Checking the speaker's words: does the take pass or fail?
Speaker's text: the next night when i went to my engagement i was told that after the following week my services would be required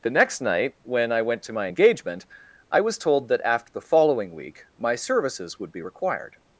pass